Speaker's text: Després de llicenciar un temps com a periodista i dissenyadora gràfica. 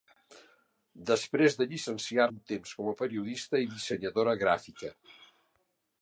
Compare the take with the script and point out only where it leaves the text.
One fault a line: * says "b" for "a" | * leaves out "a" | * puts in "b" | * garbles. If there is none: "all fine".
all fine